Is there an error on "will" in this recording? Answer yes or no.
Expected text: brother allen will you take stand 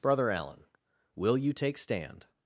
no